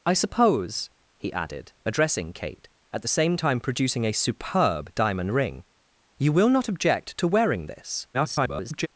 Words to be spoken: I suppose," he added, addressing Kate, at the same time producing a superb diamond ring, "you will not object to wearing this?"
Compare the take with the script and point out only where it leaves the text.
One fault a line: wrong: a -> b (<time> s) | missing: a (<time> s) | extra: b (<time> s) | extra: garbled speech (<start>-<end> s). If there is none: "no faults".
extra: garbled speech (8.1-8.9 s)